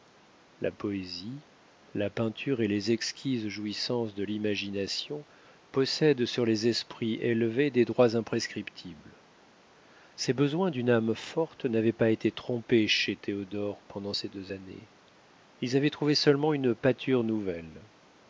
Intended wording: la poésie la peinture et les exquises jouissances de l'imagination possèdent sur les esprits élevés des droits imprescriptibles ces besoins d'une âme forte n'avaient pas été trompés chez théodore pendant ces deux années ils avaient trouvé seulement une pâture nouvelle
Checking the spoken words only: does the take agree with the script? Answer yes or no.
yes